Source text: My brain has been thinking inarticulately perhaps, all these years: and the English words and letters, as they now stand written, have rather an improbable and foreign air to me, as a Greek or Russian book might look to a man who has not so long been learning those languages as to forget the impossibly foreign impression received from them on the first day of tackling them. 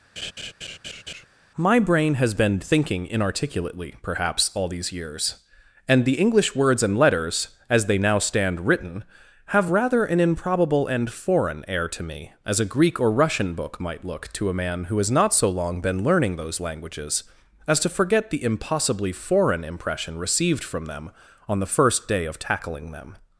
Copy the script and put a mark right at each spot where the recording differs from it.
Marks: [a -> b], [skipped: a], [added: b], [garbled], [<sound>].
[laugh] My brain has been thinking inarticulately perhaps, all these years: and the English words and letters, as they now stand written, have rather an improbable and foreign air to me, as a Greek or Russian book might look to a man who has not so long been learning those languages as to forget the impossibly foreign impression received from them on the first day of tackling them.